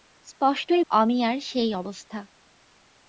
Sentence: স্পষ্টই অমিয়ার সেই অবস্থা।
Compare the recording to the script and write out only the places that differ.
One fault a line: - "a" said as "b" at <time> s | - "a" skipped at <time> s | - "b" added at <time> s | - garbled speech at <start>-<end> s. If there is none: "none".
none